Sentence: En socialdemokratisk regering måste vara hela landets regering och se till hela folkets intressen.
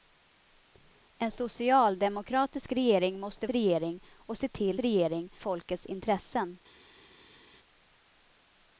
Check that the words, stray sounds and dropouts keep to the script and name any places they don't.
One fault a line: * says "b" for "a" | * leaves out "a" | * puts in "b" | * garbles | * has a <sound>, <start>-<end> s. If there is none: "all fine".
* leaves out "vara hela landets"
* says "regering" for "hela"